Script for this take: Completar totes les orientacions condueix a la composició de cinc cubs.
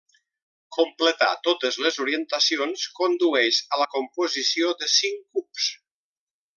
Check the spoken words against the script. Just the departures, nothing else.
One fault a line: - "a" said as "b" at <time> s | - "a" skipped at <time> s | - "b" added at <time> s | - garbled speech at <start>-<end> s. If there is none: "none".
none